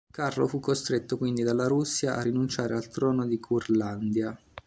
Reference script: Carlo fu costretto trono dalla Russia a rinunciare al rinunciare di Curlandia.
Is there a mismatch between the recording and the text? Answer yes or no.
yes